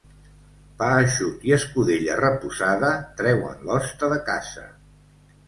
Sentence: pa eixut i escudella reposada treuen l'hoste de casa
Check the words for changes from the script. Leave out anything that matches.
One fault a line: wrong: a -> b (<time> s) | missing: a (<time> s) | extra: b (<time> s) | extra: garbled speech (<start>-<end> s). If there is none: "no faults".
no faults